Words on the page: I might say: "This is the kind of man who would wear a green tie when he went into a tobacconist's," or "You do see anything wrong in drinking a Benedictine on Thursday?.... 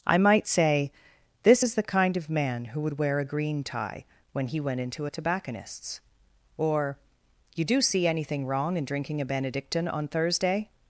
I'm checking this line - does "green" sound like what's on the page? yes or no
yes